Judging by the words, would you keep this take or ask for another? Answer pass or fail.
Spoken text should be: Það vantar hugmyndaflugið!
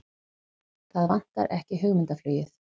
fail